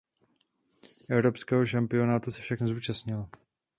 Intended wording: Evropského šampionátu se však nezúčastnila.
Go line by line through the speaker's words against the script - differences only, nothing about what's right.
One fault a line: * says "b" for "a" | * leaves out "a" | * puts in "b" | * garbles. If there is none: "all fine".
all fine